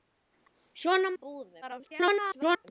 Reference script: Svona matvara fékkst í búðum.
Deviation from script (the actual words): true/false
true